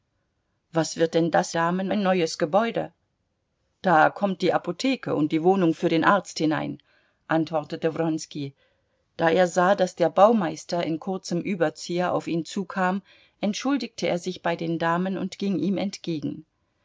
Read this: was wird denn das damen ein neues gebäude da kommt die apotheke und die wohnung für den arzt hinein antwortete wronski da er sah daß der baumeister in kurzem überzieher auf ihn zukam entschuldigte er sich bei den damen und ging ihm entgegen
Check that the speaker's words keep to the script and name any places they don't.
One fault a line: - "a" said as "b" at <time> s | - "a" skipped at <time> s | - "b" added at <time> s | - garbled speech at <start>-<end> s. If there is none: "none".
none